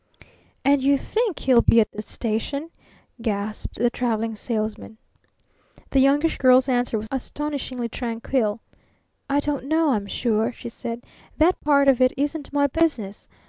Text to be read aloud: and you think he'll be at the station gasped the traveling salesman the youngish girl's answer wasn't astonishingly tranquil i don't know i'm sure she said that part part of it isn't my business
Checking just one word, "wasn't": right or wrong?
wrong